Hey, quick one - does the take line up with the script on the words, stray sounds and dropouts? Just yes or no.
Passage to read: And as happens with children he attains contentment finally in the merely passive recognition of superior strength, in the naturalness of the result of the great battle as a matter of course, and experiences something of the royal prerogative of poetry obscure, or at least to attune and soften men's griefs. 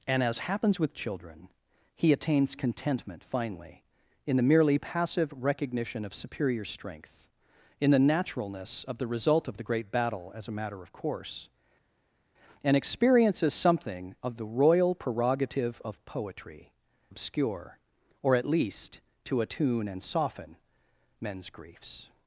yes